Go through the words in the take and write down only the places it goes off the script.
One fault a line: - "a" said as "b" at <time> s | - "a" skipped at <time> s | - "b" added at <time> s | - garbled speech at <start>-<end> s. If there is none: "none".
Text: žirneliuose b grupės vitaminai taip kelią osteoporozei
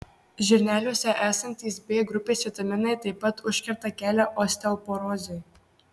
- "esantys" added at 1.2 s
- "pat užkerta" added at 3.3 s